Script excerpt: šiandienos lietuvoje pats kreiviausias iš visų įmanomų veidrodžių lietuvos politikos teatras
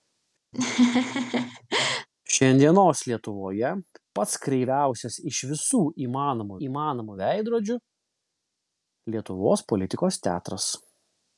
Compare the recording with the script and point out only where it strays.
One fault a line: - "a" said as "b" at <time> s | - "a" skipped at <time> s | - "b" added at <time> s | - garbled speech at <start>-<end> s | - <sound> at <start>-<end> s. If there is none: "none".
- laugh at 0.5-2.1 s
- "įmanomų" added at 6.7 s